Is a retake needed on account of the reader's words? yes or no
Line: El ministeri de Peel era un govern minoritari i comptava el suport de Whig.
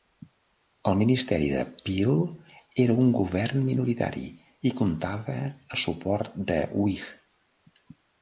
no